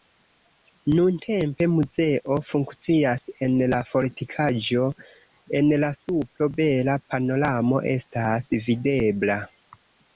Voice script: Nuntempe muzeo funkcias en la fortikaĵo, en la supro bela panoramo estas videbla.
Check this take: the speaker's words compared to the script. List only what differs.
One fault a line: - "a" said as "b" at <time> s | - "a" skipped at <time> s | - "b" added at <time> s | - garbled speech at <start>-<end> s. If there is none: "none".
none